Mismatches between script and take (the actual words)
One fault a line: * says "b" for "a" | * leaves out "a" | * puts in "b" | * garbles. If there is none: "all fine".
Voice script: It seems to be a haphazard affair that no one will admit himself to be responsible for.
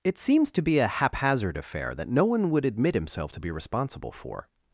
* says "would" for "will"